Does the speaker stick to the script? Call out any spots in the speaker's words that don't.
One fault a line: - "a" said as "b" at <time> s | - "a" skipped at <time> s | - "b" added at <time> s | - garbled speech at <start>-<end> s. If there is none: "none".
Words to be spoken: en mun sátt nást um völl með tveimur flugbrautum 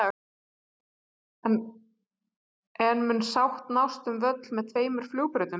none